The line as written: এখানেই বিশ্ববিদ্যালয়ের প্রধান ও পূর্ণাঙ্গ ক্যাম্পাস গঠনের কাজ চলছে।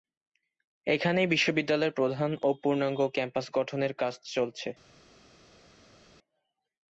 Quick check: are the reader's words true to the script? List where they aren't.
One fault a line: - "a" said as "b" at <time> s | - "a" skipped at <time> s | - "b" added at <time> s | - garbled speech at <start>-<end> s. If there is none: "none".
none